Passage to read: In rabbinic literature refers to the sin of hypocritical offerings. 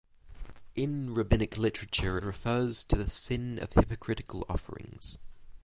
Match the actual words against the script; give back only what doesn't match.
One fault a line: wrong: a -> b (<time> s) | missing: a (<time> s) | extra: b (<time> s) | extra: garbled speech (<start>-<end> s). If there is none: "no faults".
no faults